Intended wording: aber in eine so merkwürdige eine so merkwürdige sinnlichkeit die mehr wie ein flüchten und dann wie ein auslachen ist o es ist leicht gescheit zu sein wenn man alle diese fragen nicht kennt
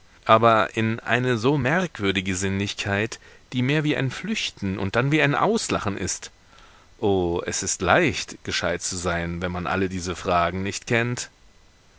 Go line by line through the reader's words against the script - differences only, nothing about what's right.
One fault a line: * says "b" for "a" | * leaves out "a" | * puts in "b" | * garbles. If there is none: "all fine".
* leaves out "eine so merkwürdige"